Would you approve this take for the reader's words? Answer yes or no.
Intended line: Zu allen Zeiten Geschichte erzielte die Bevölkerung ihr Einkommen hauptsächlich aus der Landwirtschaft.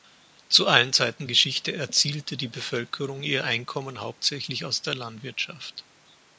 yes